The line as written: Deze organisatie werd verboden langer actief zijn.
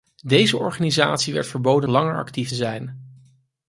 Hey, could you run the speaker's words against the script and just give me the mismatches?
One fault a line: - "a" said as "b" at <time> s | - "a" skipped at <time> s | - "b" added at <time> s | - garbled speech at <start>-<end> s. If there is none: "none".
none